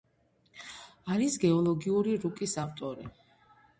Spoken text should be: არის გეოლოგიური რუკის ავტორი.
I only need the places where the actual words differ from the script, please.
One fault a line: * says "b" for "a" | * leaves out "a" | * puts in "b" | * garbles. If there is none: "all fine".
all fine